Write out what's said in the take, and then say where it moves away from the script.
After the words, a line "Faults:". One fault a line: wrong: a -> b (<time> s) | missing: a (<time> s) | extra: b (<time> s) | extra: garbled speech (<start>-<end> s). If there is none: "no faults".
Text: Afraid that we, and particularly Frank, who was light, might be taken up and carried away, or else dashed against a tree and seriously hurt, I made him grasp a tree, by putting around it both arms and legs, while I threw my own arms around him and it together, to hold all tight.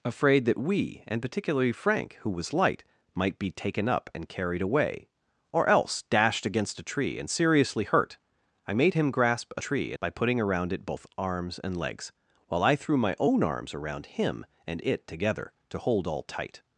Afraid that we, and particularly Frank, who was light, might be taken up and carried away, or else dashed against a tree and seriously hurt, I made him grasp a tree, by putting around it both arms and legs, while I threw my own arms around him and it together, to hold all tight.
Faults:
no faults